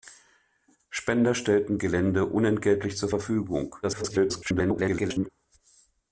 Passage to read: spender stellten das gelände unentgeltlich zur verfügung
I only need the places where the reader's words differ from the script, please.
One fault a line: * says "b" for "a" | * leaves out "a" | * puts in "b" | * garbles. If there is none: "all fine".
* leaves out "das"
* garbles